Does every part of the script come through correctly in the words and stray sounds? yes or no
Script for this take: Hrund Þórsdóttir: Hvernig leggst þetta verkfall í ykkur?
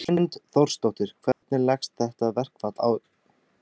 no